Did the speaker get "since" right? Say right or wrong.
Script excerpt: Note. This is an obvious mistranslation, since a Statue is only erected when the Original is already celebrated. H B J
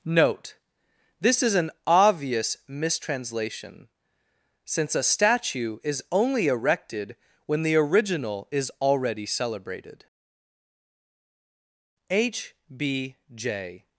right